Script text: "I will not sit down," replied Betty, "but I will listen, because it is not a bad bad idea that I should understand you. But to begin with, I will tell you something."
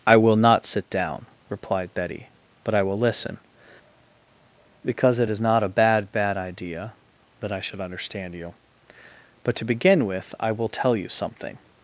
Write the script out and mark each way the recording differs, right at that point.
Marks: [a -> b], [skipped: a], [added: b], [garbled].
"I will not sit down," replied Betty, "but I will listen, because it is not a bad bad idea that I should understand you. But to begin with, I will tell you something."